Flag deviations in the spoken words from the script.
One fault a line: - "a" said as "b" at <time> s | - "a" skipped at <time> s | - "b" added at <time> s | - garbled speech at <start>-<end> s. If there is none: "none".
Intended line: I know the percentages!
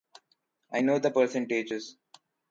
none